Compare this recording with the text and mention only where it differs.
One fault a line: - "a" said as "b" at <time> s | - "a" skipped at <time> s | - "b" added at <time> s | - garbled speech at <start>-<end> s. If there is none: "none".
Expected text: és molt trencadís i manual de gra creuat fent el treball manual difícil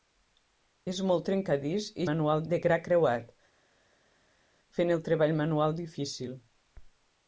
none